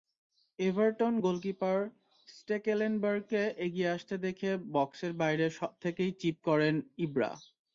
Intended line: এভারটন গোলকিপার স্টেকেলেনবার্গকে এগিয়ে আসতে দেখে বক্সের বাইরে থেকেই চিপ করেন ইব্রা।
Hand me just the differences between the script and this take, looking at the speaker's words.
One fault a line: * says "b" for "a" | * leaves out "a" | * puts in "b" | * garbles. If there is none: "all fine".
all fine